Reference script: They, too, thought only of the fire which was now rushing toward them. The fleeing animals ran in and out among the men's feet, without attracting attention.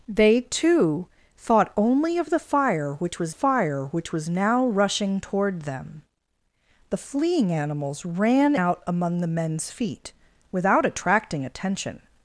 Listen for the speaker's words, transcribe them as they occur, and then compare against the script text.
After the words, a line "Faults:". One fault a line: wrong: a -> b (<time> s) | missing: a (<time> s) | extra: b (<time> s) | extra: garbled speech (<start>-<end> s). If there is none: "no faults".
They, too, thought only of the fire which was fire which was now rushing toward them. The fleeing animals ran out among the men's feet, without attracting attention.
Faults:
extra: fire which was (3.3 s)
missing: in and (8.5 s)